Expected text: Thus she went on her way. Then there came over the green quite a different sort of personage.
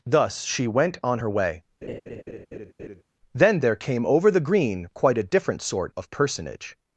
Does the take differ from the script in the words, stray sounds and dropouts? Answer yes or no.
yes